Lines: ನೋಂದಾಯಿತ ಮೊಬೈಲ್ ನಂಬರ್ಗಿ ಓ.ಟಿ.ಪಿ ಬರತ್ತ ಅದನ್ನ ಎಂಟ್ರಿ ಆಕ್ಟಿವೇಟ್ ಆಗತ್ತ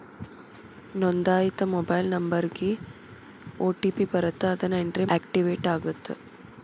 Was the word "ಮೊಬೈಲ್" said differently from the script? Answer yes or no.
no